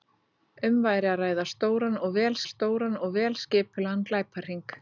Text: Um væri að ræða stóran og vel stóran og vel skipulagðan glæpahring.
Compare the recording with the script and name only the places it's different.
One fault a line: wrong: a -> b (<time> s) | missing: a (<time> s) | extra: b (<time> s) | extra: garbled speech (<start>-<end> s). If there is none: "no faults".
no faults